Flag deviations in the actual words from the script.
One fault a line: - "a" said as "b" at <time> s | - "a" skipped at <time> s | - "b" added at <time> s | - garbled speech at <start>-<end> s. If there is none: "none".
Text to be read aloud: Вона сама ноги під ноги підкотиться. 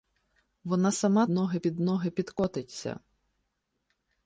none